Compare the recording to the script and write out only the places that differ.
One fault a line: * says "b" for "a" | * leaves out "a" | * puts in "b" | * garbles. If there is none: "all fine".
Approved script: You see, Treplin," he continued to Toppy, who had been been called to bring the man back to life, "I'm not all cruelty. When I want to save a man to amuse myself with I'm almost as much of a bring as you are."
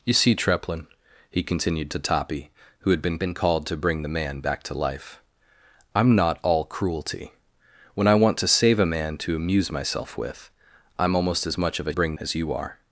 all fine